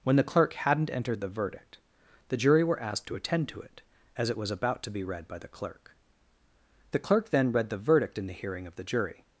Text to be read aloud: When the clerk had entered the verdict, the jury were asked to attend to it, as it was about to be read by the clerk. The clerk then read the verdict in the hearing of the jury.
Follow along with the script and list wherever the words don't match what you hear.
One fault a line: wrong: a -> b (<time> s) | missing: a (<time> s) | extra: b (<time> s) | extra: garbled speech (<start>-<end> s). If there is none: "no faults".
wrong: had -> hadn't (0.5 s)